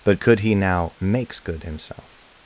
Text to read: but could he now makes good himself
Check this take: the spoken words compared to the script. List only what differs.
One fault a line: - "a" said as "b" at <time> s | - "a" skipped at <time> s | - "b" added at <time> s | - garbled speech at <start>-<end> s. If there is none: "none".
none